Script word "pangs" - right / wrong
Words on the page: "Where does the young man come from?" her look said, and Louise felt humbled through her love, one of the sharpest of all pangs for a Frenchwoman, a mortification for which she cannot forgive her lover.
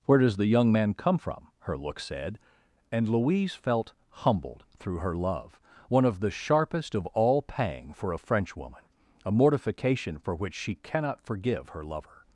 wrong